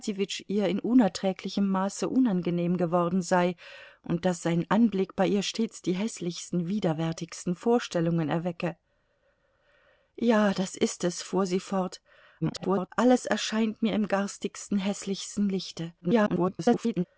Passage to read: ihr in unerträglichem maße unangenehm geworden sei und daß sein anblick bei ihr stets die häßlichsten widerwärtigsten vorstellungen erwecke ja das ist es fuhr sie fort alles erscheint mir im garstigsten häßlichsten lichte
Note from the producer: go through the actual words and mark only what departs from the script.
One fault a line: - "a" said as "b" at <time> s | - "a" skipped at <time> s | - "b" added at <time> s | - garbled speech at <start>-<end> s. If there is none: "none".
- garbled speech at 12.4-12.9 s
- garbled speech at 16.0-17.0 s